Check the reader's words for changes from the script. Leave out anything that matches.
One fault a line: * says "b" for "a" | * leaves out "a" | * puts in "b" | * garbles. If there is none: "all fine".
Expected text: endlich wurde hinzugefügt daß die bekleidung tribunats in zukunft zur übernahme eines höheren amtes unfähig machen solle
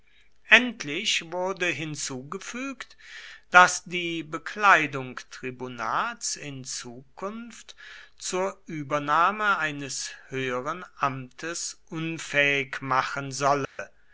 all fine